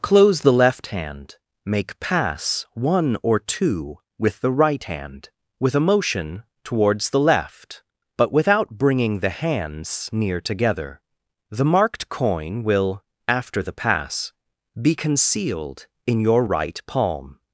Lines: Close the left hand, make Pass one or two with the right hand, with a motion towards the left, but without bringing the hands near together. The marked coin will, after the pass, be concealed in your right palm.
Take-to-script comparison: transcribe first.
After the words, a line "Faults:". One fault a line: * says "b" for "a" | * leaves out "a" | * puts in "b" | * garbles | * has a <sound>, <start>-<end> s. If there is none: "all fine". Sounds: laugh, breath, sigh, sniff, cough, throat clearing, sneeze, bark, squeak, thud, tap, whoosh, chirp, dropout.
Close the left hand, make Pass one or two with the right hand, with a motion towards the left, but without bringing the hands near together. The marked coin will, after the pass, be concealed in your right palm.
Faults:
all fine